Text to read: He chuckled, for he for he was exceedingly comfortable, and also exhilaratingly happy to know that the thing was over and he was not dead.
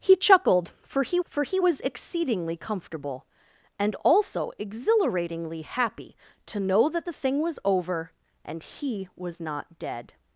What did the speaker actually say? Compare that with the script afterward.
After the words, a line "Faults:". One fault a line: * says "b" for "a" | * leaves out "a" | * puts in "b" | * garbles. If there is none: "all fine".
He chuckled, for he for he was exceedingly comfortable, and also exhilaratingly happy to know that the thing was over and he was not dead.
Faults:
all fine